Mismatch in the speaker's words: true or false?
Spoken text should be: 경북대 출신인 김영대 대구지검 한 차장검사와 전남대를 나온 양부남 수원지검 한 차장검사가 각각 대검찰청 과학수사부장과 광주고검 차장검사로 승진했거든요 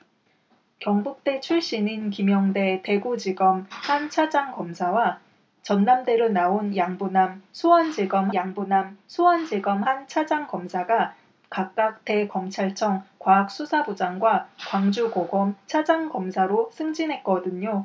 true